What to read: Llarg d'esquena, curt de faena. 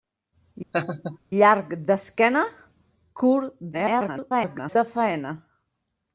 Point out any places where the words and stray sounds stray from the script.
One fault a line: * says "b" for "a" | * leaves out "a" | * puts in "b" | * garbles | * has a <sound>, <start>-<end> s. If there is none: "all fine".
* has a laugh, 0.7-1.2 s
* garbles